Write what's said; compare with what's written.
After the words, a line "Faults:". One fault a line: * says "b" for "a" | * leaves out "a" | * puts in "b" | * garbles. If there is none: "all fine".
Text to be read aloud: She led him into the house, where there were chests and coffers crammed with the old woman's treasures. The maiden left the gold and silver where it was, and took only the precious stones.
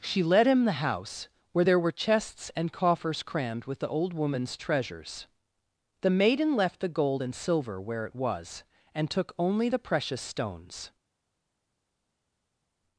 She led him the house, where there were chests and coffers crammed with the old woman's treasures. The maiden left the gold and silver where it was, and took only the precious stones.
Faults:
* leaves out "into"